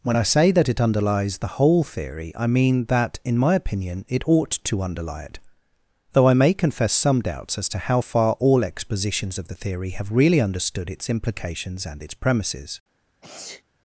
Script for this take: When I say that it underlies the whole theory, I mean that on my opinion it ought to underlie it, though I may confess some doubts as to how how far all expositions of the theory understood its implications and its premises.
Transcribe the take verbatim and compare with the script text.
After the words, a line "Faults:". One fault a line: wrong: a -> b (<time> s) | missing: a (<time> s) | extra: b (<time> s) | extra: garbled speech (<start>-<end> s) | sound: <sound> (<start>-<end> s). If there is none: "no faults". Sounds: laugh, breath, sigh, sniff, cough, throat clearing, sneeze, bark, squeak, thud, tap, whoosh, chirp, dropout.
When I say that it underlies the whole theory, I mean that in my opinion it ought to underlie it, though I may confess some doubts as to how far all expositions of the theory have really understood its implications and its premises.
Faults:
wrong: on -> in (3.2 s)
missing: how (8.0 s)
extra: have really (9.9 s)
sound: sneeze (13.2-13.6 s)